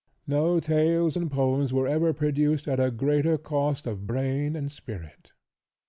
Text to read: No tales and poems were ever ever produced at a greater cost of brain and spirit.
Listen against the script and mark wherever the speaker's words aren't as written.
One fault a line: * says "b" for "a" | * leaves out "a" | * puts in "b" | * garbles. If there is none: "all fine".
* leaves out "ever"